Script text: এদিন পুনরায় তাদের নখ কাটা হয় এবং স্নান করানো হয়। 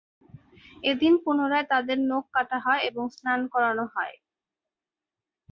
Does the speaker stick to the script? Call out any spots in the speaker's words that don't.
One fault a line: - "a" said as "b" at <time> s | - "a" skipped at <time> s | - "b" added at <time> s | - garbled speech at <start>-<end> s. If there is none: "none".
none